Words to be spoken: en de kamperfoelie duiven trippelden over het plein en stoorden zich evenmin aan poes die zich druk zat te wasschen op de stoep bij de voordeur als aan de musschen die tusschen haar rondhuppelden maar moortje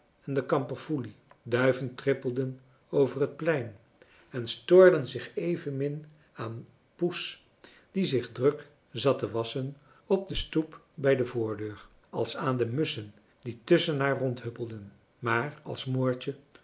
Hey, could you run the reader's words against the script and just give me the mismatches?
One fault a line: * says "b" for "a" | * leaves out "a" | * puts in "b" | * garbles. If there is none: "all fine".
* puts in "als"